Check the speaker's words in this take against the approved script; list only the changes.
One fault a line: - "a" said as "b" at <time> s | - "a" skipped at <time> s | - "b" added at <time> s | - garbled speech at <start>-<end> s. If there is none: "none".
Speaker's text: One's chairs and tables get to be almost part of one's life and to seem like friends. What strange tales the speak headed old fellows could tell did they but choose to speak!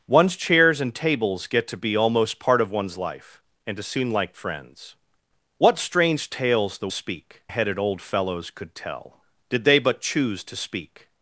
none